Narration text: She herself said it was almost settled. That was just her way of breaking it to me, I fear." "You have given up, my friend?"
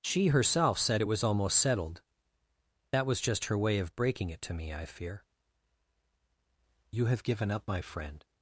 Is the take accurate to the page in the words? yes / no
yes